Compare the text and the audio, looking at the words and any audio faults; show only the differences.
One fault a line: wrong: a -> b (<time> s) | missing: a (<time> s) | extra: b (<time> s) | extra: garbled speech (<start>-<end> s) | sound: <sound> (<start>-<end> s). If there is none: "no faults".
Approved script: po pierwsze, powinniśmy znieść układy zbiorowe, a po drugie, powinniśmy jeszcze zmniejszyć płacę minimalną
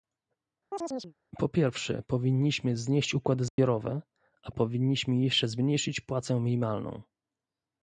sound: chirp (0.7-1.1 s)
sound: dropout (3.5-3.6 s)
missing: po drugie (4.5 s)